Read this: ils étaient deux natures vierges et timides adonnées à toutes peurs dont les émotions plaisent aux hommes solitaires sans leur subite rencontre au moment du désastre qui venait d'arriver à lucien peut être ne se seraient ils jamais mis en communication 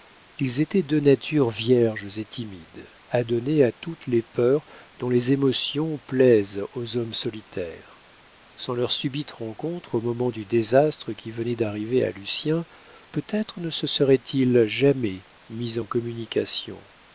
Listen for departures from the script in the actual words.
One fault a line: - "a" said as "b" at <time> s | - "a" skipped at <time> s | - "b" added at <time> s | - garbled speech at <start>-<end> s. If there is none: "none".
- "les" added at 4.1 s